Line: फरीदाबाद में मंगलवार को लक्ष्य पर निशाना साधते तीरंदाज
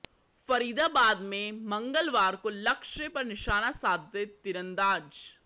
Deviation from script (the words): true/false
false